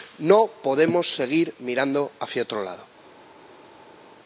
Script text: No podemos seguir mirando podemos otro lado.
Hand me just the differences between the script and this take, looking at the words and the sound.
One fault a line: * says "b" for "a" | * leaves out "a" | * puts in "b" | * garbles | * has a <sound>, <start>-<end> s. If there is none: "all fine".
* says "hacia" for "podemos"